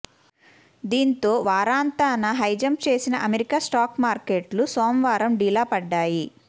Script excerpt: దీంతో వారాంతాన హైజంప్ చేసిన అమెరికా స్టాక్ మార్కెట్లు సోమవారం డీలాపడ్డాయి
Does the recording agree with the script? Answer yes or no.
yes